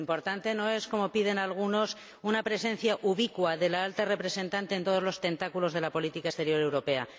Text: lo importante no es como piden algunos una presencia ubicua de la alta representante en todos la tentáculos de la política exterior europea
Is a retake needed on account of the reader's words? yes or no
yes